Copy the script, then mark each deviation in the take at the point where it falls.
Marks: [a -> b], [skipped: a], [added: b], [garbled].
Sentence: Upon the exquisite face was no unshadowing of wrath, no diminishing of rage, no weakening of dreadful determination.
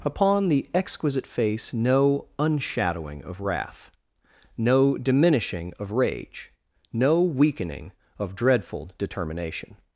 Upon the exquisite face [skipped: was] no unshadowing of wrath, no diminishing of rage, no weakening of dreadful determination.